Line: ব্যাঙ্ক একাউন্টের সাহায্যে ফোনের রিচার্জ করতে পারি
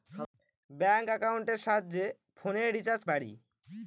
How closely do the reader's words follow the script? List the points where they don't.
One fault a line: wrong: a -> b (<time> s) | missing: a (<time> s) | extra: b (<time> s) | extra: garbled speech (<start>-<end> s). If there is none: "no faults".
missing: করতে (3.0 s)